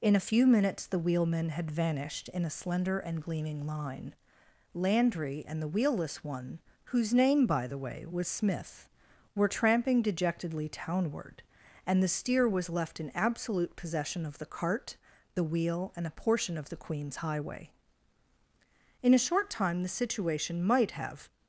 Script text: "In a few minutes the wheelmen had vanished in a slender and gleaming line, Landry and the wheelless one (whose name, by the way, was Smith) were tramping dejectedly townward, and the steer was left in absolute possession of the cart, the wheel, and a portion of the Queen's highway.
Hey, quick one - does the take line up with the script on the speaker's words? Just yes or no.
no